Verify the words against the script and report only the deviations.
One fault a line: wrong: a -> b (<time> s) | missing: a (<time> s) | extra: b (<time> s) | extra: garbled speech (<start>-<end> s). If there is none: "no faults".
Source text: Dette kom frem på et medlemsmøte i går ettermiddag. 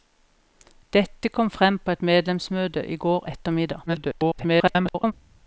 extra: garbled speech (3.9-5.1 s)